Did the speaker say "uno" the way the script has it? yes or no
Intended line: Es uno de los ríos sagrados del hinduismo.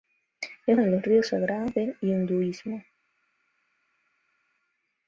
no